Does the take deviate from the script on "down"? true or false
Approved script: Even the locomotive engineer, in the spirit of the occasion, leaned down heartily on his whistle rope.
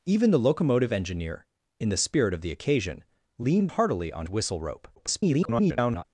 true